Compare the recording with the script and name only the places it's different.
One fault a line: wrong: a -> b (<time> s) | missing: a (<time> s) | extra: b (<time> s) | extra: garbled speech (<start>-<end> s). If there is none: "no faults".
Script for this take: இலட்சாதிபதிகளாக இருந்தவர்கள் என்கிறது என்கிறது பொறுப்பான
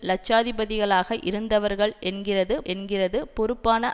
no faults